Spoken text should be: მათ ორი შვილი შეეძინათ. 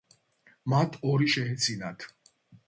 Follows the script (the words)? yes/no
no